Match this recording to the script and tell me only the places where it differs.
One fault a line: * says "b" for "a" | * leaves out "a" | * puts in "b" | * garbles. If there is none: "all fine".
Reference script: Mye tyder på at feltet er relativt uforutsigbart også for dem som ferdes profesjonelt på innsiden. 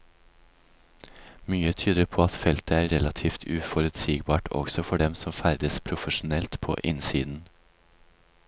all fine